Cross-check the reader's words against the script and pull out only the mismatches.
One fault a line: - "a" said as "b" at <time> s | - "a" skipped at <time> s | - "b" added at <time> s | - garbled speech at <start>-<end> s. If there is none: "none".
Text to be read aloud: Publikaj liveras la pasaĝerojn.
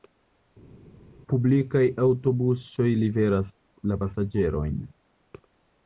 - "aŭtobusoj" added at 2.1 s